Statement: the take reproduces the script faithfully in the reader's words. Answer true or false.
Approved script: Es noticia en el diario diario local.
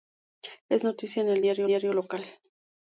true